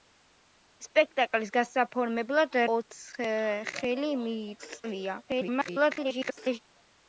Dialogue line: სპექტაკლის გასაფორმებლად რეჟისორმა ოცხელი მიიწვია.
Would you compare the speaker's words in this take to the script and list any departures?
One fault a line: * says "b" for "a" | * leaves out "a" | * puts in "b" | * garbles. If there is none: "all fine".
* leaves out "რეჟისორმა"
* garbles